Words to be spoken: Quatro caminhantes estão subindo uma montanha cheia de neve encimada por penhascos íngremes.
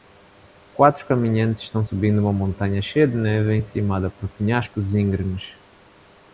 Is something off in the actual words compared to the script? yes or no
no